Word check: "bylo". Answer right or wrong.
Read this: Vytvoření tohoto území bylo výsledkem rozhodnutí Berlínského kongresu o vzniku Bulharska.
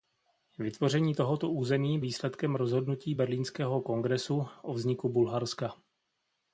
wrong